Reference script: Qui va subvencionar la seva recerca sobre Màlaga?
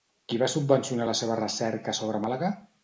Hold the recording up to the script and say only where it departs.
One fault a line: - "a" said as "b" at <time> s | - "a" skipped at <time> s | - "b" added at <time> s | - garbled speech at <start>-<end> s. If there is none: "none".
none